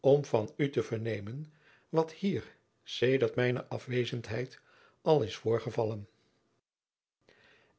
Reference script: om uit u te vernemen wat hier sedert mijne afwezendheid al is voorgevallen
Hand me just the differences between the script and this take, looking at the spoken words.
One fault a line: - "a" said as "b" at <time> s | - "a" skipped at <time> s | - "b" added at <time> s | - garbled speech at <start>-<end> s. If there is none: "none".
- "uit" said as "van" at 0.2 s